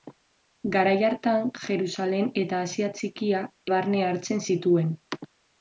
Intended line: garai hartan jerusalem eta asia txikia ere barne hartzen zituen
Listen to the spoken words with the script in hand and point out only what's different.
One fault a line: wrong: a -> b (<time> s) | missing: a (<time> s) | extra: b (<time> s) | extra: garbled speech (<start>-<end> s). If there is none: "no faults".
missing: ere (3.5 s)